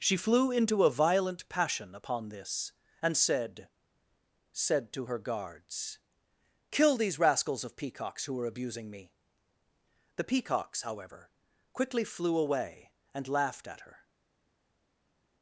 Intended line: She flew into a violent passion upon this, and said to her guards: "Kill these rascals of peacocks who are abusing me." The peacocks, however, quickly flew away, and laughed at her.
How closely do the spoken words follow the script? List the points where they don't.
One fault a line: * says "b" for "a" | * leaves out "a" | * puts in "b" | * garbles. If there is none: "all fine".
* puts in "said"